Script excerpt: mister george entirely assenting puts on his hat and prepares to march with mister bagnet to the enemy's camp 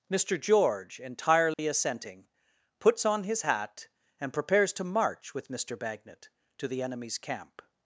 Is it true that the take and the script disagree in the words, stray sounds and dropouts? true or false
true